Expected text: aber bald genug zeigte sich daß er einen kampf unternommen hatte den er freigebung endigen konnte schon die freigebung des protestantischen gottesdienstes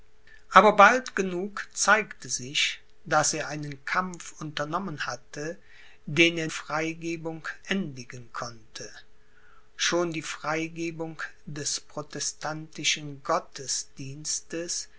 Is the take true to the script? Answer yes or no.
yes